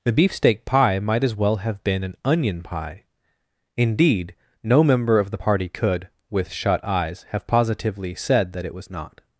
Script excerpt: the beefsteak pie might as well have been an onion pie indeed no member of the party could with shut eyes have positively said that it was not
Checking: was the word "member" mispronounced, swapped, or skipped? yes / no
no